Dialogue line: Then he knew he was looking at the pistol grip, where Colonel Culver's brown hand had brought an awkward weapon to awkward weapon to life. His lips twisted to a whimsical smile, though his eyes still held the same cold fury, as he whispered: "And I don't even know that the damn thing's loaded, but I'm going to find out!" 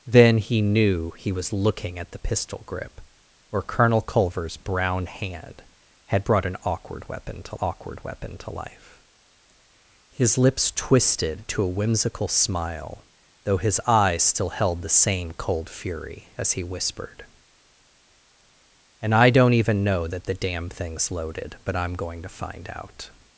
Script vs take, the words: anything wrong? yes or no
no